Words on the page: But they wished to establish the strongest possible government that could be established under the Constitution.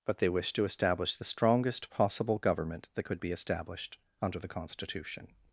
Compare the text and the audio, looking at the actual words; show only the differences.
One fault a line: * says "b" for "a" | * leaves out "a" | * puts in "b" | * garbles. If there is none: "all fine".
all fine